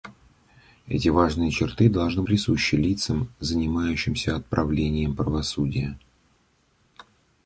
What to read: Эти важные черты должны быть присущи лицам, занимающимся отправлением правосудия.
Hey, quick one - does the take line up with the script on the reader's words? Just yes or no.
no